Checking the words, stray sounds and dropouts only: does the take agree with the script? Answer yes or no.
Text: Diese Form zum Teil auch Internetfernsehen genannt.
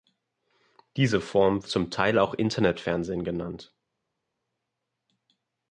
yes